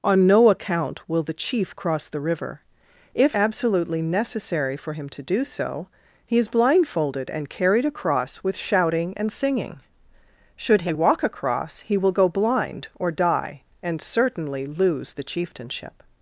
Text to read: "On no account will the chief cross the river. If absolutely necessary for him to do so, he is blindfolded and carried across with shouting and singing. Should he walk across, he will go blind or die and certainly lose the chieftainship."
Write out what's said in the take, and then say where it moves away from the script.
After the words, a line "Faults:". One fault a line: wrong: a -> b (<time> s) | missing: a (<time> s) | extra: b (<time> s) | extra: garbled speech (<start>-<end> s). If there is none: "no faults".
"On no account will the chief cross the river. If absolutely necessary for him to do so, he is blindfolded and carried across with shouting and singing. Should he walk across, he will go blind or die and certainly lose the chieftainship."
Faults:
no faults